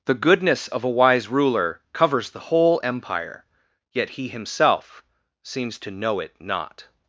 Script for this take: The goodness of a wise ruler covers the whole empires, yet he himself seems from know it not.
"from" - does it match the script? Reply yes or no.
no